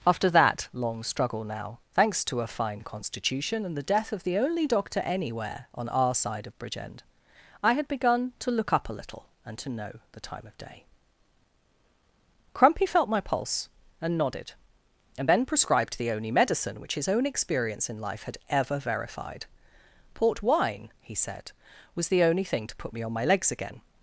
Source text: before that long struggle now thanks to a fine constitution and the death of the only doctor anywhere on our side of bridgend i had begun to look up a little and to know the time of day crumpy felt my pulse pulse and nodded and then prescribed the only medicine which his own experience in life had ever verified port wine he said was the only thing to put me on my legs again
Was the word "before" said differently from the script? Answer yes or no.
yes